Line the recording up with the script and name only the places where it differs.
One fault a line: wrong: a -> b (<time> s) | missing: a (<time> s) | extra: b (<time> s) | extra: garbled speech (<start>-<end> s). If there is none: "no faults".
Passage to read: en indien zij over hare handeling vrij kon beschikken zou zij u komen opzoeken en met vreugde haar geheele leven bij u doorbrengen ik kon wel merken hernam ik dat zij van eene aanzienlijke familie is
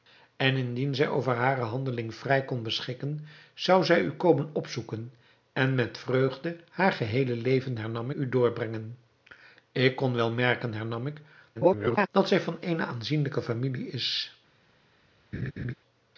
wrong: bij -> hernam (7.8 s)
extra: garbled speech (11.5-12.1 s)